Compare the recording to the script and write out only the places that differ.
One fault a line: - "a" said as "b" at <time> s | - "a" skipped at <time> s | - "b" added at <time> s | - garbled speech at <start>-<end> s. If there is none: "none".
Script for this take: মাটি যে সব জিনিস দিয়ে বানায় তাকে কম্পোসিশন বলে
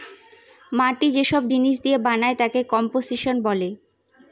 none